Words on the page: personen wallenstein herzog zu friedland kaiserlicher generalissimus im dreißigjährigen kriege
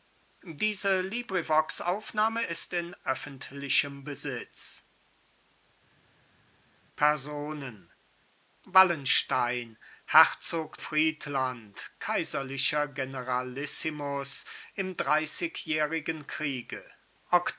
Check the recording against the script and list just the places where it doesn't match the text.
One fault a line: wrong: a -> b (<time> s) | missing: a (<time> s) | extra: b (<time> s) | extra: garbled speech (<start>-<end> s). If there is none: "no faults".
missing: zu (10.8 s)